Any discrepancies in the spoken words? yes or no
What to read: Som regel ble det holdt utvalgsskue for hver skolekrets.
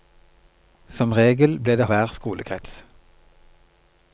yes